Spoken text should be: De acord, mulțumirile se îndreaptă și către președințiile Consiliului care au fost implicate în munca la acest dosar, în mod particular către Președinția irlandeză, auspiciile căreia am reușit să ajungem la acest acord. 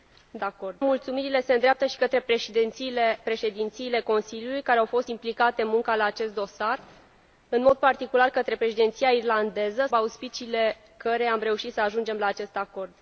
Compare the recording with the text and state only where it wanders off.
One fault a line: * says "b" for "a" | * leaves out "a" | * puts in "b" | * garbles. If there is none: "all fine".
all fine